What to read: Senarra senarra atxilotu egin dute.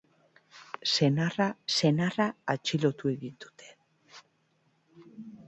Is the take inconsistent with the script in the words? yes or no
no